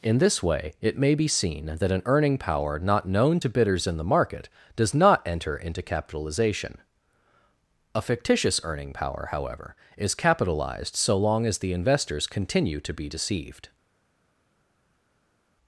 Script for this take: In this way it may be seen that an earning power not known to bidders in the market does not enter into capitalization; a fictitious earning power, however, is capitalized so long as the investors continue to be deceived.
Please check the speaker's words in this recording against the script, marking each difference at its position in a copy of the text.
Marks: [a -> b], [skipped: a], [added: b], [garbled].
In this way it may be seen that an earning power not known to bidders in the market does not enter into capitalization; a fictitious earning power, however, is capitalized so long as the investors continue to be deceived.